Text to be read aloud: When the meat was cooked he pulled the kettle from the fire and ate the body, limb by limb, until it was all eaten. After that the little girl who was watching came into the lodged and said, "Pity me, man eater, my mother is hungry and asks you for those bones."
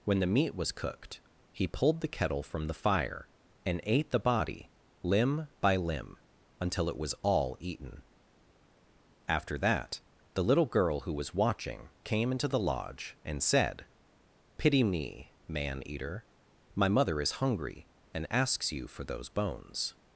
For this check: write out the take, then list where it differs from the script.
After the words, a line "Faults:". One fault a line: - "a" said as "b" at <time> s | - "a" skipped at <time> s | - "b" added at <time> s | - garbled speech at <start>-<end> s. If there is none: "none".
When the meat was cooked he pulled the kettle from the fire and ate the body, limb by limb, until it was all eaten. After that the little girl who was watching came into the lodge and said, "Pity me, man eater, my mother is hungry and asks you for those bones."
Faults:
- "lodged" said as "lodge" at 12.7 s